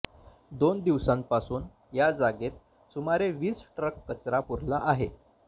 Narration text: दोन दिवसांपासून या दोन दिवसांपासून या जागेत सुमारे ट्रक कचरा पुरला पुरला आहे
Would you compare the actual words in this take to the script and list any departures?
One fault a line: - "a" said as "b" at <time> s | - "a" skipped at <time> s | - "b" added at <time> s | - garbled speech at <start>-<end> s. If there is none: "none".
- "दोन दिवसांपासून या" skipped at 2.1 s
- "वीस" added at 3.3 s
- "पुरला" skipped at 4.8 s